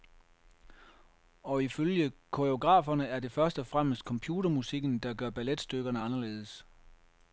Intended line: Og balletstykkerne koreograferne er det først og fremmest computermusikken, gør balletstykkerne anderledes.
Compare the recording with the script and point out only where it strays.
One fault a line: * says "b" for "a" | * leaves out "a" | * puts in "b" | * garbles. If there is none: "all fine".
* says "ifølge" for "balletstykkerne"
* puts in "der"